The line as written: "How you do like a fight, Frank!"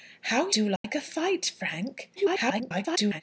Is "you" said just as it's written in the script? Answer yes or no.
no